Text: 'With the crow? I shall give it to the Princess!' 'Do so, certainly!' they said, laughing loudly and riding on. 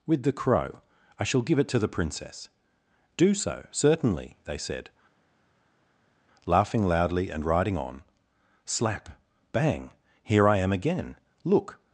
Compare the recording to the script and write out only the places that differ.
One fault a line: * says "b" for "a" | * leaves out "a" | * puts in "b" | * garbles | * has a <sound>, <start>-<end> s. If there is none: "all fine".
* puts in "Slap bang here I am again Look"